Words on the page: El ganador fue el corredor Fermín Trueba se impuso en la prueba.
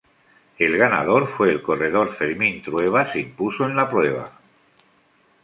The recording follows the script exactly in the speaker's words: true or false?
true